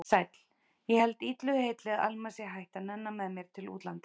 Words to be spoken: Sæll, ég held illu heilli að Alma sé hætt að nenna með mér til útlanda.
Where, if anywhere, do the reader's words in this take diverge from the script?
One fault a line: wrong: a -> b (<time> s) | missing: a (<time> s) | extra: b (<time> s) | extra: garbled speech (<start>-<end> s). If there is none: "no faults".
no faults